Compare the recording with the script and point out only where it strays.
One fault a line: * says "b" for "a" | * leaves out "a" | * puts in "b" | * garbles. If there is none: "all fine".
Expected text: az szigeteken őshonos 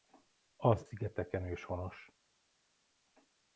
all fine